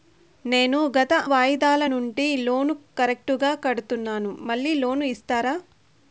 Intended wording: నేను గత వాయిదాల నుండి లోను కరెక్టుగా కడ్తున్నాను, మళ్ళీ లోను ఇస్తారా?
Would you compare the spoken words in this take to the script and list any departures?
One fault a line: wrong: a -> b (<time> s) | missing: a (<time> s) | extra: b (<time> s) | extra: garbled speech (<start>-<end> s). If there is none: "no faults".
no faults